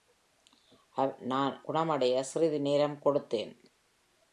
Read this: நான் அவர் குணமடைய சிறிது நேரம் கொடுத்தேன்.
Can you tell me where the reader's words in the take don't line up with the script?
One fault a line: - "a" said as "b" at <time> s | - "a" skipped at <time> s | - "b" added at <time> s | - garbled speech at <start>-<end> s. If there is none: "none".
- "அவர்" skipped at 1.6 s